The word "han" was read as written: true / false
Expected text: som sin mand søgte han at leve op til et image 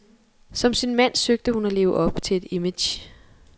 false